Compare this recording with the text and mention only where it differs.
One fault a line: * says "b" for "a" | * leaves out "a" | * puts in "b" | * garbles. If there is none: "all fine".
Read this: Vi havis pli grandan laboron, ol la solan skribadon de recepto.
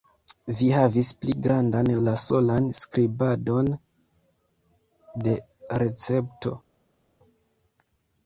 * leaves out "laboron ol"